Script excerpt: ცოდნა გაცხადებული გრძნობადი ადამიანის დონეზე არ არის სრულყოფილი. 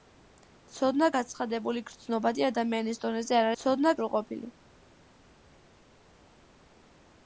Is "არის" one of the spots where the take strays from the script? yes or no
yes